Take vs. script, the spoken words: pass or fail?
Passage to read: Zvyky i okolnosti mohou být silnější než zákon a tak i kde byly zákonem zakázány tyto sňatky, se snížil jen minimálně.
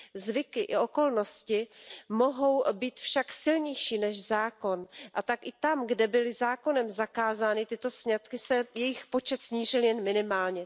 fail